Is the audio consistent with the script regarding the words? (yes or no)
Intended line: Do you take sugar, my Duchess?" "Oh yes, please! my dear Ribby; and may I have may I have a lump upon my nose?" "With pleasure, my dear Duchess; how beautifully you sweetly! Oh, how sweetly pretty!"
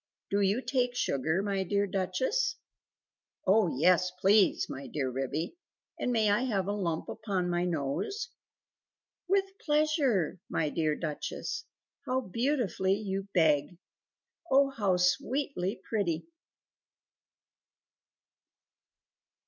no